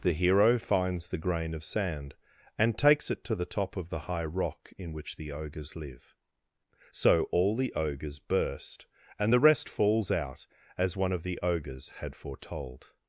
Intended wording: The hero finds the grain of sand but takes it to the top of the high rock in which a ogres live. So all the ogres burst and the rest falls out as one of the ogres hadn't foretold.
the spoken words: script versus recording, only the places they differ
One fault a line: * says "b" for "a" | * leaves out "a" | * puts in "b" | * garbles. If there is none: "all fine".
* says "and" for "but"
* says "the" for "a"
* says "had" for "hadn't"